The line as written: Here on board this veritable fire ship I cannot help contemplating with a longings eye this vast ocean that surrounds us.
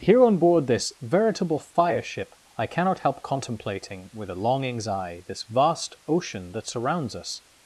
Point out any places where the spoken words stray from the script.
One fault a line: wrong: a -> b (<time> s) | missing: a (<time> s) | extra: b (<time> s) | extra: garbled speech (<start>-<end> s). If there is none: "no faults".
no faults